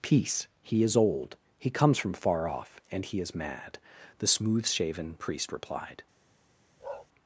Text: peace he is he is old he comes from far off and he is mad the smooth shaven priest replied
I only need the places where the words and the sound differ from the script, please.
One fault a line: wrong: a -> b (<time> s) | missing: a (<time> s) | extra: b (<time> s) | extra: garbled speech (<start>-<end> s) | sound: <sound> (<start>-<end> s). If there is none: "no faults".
missing: he is (1.0 s)
sound: bark (6.8-7.1 s)